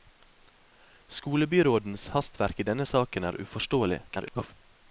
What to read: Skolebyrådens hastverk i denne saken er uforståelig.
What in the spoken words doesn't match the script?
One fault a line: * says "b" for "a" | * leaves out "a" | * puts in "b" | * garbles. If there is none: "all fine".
* garbles